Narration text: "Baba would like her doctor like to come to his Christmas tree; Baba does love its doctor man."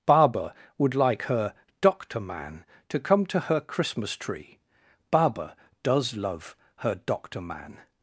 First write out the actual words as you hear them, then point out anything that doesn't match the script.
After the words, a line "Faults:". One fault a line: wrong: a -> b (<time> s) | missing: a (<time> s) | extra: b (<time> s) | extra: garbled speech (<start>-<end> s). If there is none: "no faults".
"Baba would like her doctor man to come to her Christmas tree; Baba does love her doctor man."
Faults:
wrong: like -> man (2.2 s)
wrong: his -> her (3.4 s)
wrong: its -> her (6.8 s)